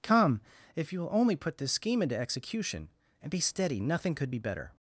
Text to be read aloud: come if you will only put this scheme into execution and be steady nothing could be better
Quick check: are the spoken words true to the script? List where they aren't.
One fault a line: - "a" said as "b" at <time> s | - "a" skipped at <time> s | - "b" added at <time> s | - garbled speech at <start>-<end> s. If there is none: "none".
none